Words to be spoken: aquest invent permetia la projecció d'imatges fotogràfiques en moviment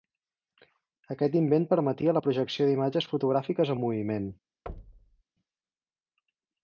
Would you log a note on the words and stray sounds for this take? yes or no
yes